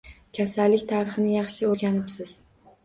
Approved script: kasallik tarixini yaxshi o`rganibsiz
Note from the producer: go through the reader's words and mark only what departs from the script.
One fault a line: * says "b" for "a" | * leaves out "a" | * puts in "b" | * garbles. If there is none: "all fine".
all fine